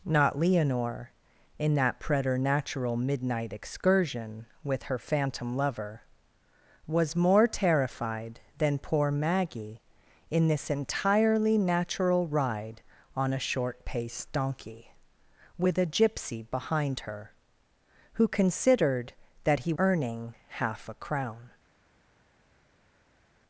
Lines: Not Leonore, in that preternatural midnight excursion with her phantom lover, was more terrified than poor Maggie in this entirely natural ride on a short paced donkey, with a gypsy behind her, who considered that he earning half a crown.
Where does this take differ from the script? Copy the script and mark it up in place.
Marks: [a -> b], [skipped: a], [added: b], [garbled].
Not Leonore, in that preternatural midnight excursion with her phantom lover, was more terrified than poor Maggie in this entirely natural ride on a short paced donkey, with a gypsy behind her, who considered that he earning half a crown.